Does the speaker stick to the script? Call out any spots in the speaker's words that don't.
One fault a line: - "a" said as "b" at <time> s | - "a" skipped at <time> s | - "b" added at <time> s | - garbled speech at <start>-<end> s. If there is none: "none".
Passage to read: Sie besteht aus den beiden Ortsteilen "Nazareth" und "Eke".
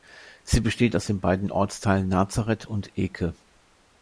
none